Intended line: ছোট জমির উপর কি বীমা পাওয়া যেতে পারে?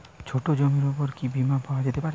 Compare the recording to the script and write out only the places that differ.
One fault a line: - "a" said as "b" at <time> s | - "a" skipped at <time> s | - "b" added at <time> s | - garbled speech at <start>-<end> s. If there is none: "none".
none